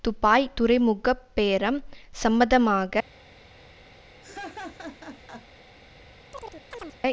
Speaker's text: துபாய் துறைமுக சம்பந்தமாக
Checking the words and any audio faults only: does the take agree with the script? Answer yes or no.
no